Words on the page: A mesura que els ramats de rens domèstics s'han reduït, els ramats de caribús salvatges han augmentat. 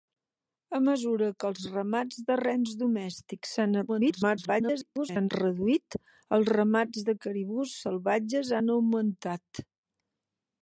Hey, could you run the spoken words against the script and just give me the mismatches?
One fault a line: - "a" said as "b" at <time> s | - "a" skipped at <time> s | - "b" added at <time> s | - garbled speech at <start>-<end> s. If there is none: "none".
- garbled speech at 3.9-5.3 s